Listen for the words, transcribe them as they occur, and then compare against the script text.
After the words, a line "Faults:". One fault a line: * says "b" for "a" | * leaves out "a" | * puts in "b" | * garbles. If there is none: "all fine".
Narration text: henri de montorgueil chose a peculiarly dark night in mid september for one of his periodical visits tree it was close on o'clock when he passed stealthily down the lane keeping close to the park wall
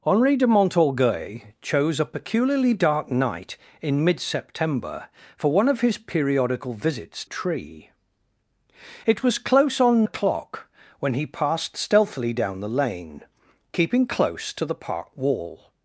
henri de montorgueil chose a peculiarly dark night in mid september for one of his periodical visits tree it was close on o'clock when he passed stealthily down the lane keeping close to the park wall
Faults:
all fine